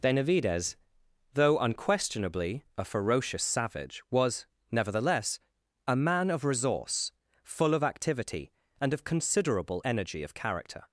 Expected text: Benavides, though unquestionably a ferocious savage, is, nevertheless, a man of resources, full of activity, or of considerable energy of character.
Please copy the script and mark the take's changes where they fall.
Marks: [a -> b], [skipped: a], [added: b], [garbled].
Benavides, though unquestionably a ferocious savage, [is, -> was] nevertheless, a man of [resources, -> resource] full of activity, [or -> and] of considerable energy of character.